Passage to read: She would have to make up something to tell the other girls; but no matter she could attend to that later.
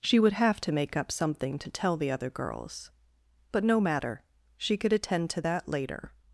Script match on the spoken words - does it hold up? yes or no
yes